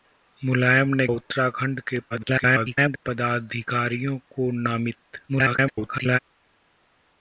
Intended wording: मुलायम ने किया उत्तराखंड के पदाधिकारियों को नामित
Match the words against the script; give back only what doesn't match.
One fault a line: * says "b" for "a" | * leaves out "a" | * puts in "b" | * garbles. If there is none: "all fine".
* leaves out "किया"
* garbles
* garbles